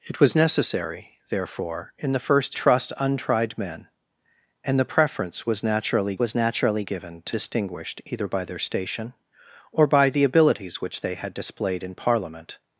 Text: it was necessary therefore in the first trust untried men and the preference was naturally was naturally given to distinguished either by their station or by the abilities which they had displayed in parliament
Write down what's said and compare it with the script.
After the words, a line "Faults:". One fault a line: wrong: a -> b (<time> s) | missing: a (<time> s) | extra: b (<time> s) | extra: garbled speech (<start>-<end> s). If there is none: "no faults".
it was necessary therefore in the first trust untried men and the preference was naturally was naturally given to distinguished either by their station or by the abilities which they had displayed in parliament
Faults:
no faults